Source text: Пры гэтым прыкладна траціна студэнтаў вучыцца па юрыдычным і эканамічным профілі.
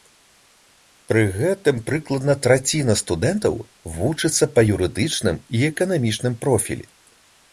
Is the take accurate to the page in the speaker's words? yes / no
yes